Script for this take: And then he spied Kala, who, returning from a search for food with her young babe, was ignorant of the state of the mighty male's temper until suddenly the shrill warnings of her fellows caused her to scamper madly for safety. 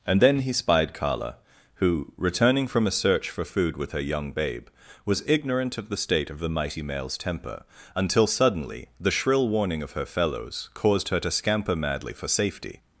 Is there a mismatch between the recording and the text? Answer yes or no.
yes